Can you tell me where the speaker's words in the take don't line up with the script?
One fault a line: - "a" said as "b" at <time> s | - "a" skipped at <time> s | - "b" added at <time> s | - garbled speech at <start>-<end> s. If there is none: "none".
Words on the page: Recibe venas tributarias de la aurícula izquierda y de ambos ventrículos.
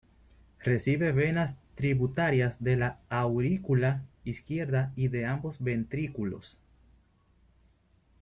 none